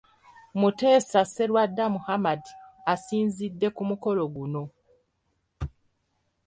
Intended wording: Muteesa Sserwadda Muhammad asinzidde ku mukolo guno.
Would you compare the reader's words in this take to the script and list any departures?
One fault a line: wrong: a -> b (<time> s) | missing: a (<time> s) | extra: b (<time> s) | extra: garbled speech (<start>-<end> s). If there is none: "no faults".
no faults